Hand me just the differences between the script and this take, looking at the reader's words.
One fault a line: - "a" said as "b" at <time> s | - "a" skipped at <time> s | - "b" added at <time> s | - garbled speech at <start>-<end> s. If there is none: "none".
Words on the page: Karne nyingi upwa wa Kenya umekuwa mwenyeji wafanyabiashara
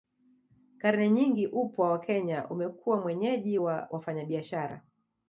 - "wa" added at 3.6 s